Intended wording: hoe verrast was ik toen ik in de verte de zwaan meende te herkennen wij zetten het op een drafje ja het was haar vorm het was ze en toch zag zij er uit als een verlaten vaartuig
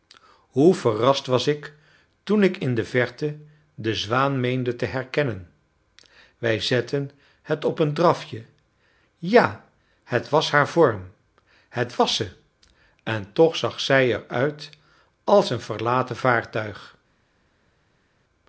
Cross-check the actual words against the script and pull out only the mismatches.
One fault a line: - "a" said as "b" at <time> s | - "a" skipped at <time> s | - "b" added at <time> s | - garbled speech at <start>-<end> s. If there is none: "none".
none